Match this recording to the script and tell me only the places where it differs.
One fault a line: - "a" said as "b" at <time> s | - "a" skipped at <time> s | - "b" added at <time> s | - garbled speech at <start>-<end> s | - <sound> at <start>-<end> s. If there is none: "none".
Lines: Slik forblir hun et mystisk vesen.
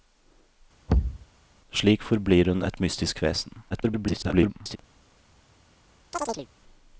- thud at 0.9-1.3 s
- garbled speech at 3.7-4.8 s
- chirp at 6.1-6.5 s